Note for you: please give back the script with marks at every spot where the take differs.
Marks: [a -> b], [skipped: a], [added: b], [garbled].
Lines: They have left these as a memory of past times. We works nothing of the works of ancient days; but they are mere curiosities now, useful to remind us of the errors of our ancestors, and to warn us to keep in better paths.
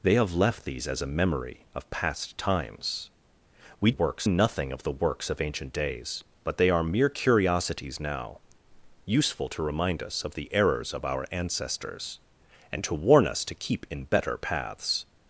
They have left these as a memory of past times. We works nothing of the works of ancient days; but they are mere curiosities now, useful to remind us of the errors of our ancestors, and to warn us to keep in better paths.